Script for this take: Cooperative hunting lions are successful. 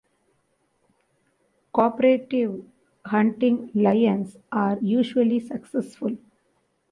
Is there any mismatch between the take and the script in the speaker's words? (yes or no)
yes